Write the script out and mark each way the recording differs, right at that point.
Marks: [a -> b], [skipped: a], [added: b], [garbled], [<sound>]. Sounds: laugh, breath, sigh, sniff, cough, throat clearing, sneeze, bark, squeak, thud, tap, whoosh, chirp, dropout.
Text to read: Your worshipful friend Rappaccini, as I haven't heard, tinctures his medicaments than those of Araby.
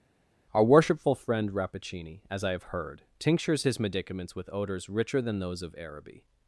[Your -> Our] worshipful friend Rappaccini, as I [haven't -> have] heard, tinctures his medicaments [added: with odors richer] than those of Araby.